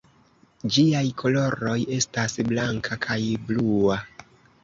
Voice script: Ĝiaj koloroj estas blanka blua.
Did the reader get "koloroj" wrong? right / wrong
right